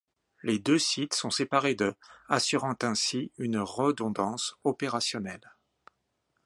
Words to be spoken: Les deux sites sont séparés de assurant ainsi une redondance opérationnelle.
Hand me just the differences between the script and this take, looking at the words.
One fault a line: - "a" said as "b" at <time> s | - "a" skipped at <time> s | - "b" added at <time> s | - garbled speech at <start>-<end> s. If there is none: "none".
none